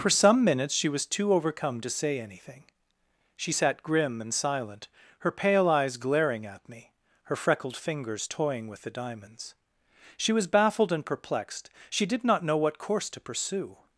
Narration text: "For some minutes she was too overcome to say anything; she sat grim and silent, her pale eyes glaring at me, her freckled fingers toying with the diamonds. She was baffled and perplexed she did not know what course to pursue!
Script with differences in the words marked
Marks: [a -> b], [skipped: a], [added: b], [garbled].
"For some minutes she was too overcome to say anything; she sat grim and silent, her pale eyes glaring at me, her freckled fingers toying with the diamonds. She was baffled and perplexed she did not know what course to pursue!